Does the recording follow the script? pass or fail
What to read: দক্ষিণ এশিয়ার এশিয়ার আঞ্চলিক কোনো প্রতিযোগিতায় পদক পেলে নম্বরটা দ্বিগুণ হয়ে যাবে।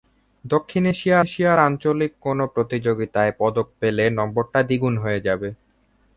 pass